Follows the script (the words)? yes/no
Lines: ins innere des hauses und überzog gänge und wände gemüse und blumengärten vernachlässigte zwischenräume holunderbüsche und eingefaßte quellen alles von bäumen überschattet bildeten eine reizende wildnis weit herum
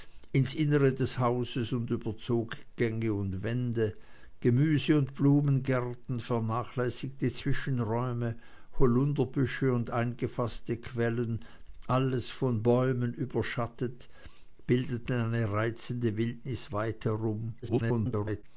no